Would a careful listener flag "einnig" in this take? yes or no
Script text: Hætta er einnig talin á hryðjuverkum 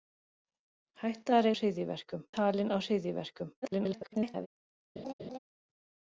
yes